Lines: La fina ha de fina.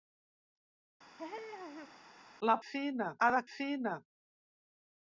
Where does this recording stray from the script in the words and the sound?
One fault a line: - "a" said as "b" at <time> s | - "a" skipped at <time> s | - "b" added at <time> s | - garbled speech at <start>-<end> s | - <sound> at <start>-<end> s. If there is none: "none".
- laugh at 1.2-2.1 s